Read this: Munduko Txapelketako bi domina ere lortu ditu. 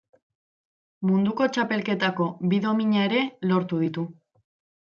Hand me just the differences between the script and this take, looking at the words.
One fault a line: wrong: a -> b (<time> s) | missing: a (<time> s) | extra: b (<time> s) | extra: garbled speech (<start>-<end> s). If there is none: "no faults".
no faults